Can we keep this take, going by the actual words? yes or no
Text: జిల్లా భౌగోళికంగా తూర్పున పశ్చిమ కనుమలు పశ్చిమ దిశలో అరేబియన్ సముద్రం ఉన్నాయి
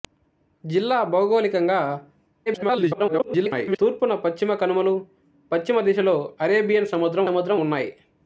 no